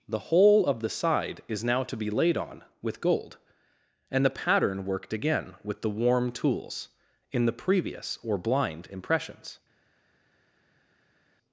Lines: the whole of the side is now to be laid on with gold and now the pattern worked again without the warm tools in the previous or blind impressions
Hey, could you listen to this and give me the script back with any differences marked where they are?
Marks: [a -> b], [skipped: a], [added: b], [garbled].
the whole of the side is now to be laid on with gold and [skipped: now] the pattern worked again [without -> with] the warm tools in the previous or blind impressions